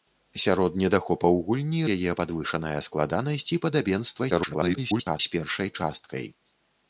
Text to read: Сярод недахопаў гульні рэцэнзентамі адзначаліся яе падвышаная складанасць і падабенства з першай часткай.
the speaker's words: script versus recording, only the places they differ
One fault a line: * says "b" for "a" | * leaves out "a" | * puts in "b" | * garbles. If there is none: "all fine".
* leaves out "рэцэнзентамі адзначаліся"
* garbles